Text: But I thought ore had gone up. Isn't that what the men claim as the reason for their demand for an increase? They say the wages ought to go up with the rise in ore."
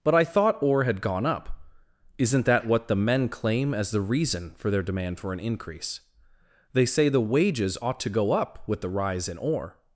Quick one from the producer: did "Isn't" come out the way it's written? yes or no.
yes